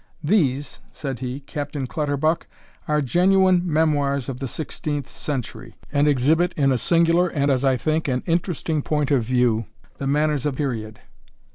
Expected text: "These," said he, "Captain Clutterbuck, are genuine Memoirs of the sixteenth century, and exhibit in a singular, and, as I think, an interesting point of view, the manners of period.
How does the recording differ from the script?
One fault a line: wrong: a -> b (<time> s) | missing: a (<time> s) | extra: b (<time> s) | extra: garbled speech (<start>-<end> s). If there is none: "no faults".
no faults